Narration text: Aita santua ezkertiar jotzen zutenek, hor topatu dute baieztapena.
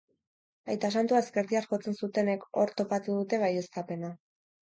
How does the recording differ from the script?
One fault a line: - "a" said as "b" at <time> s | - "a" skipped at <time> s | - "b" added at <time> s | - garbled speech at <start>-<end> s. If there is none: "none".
none